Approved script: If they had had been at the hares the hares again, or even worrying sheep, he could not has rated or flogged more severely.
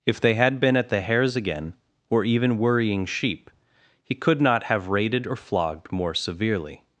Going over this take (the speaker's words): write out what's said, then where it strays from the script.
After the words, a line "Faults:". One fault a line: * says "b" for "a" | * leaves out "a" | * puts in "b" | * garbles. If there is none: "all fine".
If they had been at the hares again, or even worrying sheep, he could not have rated or flogged more severely.
Faults:
* leaves out "had"
* leaves out "the hares"
* says "have" for "has"